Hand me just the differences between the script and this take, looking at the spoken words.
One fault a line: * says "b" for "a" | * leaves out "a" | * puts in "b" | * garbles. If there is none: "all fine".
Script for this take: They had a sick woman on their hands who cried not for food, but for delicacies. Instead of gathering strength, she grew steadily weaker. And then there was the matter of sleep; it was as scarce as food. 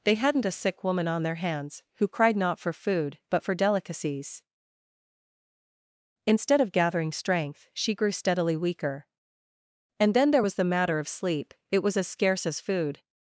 * says "hadn't" for "had"